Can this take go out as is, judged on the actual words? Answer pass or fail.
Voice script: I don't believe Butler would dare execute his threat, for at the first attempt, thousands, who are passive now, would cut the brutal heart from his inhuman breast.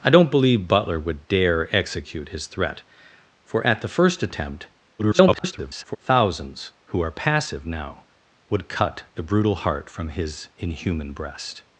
fail